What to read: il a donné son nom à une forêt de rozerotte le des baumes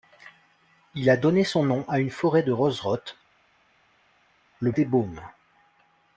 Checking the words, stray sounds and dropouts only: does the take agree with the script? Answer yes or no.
yes